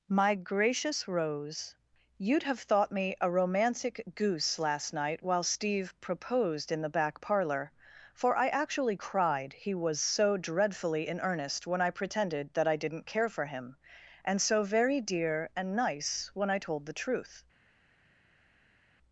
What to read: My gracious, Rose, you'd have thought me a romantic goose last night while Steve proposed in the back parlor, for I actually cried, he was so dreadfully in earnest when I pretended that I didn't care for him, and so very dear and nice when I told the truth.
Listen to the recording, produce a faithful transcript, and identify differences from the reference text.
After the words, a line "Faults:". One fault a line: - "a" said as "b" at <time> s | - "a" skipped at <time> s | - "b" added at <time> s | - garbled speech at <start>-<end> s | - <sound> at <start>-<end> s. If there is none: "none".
My gracious, Rose, you'd have thought me a romantic goose last night while Steve proposed in the back parlor, for I actually cried, he was so dreadfully in earnest when I pretended that I didn't care for him, and so very dear and nice when I told the truth.
Faults:
none